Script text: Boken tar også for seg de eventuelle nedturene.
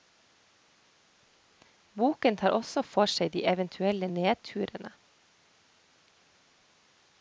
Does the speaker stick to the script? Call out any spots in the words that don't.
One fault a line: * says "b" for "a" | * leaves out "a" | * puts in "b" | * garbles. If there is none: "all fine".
all fine